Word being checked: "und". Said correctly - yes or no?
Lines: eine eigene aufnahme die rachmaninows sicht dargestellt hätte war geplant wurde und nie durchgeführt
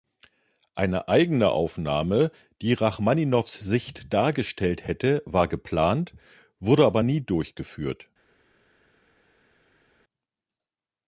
no